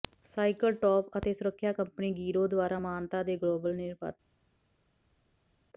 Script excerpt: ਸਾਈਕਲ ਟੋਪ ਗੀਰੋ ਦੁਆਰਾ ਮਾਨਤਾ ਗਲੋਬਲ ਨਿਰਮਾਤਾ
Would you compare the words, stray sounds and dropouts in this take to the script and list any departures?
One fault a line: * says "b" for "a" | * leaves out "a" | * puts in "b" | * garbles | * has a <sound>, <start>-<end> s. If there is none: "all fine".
* puts in "ਅਤੇ ਸੁਰੱਖਿਆ ਕੰਪਨੀ"
* puts in "ਦੇ"